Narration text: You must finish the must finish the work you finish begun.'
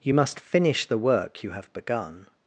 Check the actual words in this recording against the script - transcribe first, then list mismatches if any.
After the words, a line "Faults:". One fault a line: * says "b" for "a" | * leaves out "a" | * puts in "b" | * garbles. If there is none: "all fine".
You must finish the work you have begun.'
Faults:
* leaves out "must finish the"
* says "have" for "finish"